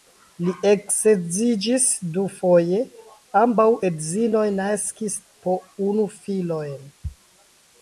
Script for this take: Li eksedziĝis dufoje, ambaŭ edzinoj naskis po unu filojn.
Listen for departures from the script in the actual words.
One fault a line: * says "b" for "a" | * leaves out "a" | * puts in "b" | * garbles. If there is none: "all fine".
all fine